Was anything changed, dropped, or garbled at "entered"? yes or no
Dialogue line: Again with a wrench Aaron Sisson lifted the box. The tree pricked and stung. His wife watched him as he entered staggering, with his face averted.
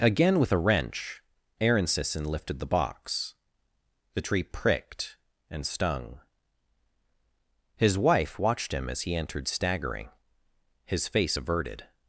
no